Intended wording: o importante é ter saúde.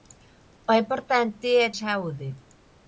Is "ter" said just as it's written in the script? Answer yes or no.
no